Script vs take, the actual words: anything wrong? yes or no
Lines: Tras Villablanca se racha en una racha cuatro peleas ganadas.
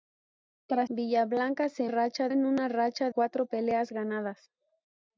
no